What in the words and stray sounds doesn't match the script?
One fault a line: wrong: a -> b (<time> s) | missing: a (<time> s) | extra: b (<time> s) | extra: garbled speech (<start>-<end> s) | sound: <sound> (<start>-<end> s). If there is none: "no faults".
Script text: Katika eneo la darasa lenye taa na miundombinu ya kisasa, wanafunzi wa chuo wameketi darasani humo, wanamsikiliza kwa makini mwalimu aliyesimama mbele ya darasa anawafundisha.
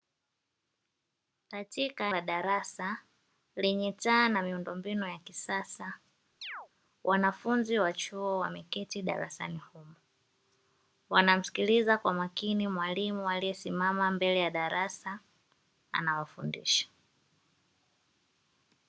missing: eneo (2.1 s)
sound: chirp (6.4-6.7 s)